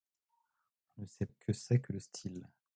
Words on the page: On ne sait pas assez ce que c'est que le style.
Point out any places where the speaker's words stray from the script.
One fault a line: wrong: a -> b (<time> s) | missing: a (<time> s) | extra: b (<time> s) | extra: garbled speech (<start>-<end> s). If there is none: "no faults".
missing: pas assez ce (1.3 s)